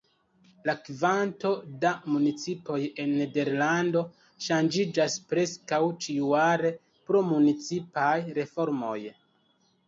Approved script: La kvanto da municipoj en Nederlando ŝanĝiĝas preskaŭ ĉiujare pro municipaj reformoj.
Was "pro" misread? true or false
false